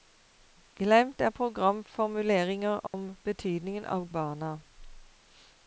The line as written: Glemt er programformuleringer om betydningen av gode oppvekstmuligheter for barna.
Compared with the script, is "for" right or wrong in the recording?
wrong